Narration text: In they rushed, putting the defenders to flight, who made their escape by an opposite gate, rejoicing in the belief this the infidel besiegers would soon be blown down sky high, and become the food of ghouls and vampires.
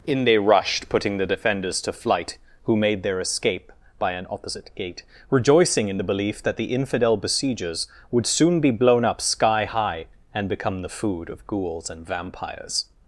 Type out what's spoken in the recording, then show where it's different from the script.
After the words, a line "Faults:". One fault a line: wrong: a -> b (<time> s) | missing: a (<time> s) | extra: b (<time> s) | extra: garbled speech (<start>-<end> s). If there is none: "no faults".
In they rushed, putting the defenders to flight, who made their escape by an opposite gate, rejoicing in the belief that the infidel besiegers would soon be blown up sky high, and become the food of ghouls and vampires.
Faults:
wrong: this -> that (6.4 s)
wrong: down -> up (9.0 s)